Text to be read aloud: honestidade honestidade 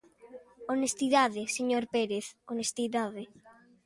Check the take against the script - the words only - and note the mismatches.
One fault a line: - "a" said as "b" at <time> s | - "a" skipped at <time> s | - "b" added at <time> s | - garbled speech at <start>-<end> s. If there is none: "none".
- "señor pérez" added at 1.6 s